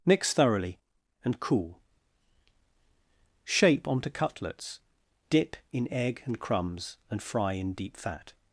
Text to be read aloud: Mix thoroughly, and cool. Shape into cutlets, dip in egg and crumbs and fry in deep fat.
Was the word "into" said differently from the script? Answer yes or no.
yes